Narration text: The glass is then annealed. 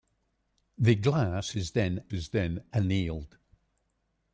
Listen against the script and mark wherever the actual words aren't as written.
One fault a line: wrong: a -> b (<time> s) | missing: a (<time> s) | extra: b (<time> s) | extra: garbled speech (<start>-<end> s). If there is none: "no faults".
extra: is then (2.1 s)